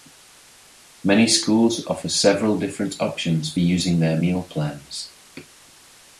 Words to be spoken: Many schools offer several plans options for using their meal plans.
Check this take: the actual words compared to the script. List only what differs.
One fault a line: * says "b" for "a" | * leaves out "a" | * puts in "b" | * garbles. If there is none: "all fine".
* says "different" for "plans"